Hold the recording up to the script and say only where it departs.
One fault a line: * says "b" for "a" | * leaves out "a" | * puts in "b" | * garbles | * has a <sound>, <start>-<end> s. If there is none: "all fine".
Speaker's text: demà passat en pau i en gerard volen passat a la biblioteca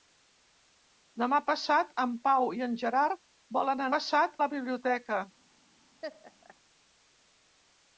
* has a laugh, 6.0-6.6 s